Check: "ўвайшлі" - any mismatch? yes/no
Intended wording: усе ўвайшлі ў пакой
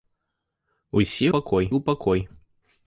yes